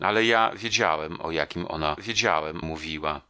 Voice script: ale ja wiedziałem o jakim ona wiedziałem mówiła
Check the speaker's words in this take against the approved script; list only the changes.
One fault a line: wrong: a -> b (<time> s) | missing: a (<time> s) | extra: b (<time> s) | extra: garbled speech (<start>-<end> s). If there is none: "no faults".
no faults